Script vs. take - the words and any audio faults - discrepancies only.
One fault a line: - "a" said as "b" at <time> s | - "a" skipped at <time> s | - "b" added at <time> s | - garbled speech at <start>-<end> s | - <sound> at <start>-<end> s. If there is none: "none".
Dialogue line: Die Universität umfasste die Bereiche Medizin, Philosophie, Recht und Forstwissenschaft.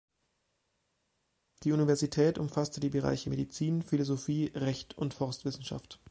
none